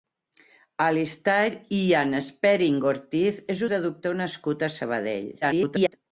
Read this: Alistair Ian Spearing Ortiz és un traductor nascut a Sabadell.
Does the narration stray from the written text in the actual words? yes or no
yes